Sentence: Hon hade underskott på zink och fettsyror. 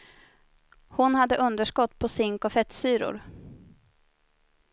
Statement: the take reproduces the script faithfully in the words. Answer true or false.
true